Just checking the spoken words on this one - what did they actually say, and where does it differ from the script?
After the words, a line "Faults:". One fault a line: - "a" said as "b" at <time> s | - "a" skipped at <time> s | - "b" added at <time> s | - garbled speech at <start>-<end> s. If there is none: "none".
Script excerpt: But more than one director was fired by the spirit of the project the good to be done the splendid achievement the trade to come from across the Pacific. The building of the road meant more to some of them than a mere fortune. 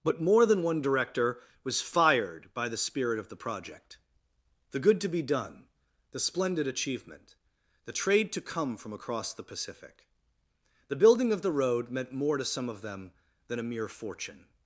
But more than one director was fired by the spirit of the project the good to be done the splendid achievement the trade to come from across the Pacific. The building of the road meant more to some of them than a mere fortune.
Faults:
none